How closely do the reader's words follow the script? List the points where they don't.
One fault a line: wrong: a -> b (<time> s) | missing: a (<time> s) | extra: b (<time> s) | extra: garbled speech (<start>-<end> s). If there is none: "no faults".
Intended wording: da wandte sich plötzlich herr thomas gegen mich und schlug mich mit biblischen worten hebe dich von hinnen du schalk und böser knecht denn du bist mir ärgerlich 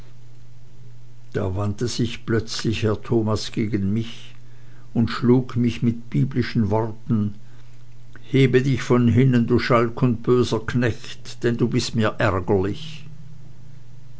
no faults